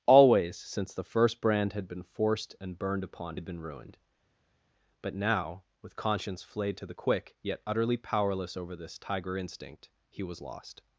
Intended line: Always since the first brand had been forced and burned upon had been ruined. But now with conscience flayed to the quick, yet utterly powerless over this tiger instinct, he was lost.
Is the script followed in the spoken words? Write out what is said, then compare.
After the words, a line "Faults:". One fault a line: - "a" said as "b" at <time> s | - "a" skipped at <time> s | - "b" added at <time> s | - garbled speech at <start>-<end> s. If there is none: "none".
Always since the first brand had been forced and burned upon had been ruined. But now with conscience flayed to the quick, yet utterly powerless over this tiger instinct, he was lost.
Faults:
none